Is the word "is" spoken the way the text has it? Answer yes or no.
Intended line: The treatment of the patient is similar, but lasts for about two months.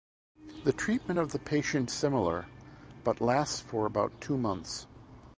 no